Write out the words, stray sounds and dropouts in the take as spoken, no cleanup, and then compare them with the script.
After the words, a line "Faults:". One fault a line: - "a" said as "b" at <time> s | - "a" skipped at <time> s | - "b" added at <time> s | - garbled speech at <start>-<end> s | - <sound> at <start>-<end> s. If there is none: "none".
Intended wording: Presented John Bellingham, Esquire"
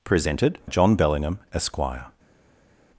Presented John Bellingham, Esquire"
Faults:
none